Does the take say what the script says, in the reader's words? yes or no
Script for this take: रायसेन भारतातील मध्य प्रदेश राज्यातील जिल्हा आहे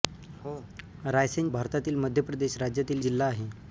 yes